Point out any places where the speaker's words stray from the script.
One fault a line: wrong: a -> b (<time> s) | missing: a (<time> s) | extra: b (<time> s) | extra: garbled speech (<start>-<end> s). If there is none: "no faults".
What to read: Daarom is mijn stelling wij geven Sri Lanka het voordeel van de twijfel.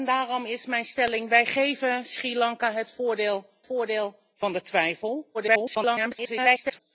extra: voordeel (3.6 s)
extra: garbled speech (5.3-6.8 s)